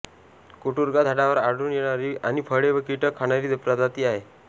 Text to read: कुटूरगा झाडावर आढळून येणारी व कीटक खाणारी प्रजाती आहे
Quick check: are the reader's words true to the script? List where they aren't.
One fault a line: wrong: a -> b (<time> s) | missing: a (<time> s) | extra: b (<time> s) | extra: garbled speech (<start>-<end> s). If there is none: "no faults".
extra: आणि फळे (2.2 s)